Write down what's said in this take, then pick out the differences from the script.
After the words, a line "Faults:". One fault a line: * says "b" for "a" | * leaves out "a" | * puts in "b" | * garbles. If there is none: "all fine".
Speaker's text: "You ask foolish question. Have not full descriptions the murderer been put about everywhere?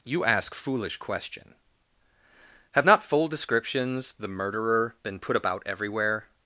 "You ask foolish question. Have not full descriptions the murderer been put about everywhere?
Faults:
all fine